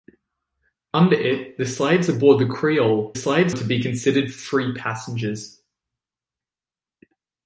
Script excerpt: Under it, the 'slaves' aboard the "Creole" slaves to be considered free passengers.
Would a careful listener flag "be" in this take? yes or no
no